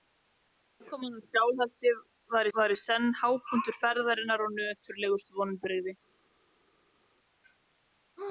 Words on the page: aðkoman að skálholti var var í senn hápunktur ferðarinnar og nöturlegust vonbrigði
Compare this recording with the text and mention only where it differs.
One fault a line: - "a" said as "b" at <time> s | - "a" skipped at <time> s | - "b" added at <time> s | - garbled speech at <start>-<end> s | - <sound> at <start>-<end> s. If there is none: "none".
none